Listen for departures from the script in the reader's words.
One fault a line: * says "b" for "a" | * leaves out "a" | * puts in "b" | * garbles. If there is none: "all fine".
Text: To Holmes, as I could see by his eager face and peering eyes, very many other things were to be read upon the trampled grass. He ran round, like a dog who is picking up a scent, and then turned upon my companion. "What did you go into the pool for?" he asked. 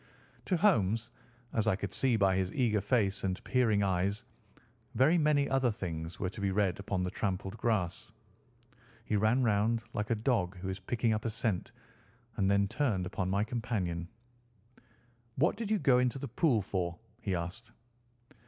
all fine